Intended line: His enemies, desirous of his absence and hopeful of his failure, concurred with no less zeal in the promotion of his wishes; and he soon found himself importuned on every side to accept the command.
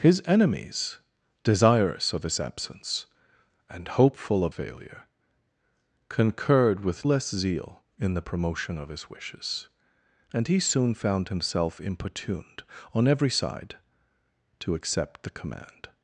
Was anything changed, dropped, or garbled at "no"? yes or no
yes